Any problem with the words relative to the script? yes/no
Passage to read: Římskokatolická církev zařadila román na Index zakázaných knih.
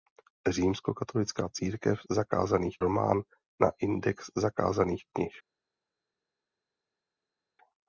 yes